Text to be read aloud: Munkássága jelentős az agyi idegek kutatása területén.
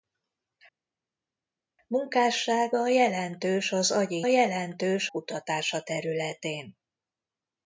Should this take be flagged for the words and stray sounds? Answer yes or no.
yes